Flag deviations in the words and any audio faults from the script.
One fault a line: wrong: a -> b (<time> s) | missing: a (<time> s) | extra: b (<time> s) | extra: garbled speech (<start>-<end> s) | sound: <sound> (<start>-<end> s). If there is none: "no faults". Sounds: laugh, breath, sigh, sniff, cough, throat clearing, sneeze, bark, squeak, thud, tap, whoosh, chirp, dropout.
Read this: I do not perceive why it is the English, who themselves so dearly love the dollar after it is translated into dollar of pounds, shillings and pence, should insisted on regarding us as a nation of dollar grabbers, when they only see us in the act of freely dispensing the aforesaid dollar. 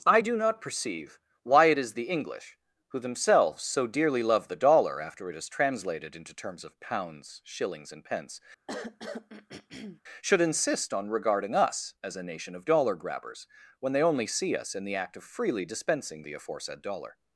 wrong: dollar -> terms (6.3 s)
sound: throat clearing (8.7-10.0 s)
wrong: insisted -> insist (10.4 s)